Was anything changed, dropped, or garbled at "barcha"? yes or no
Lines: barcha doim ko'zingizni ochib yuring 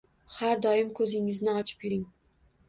yes